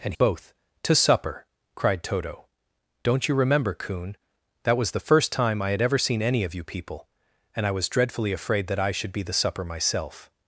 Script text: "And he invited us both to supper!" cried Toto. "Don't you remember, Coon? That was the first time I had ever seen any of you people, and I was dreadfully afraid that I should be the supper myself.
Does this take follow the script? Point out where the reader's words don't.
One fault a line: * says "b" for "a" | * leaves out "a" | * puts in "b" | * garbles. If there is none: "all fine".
* leaves out "he invited us"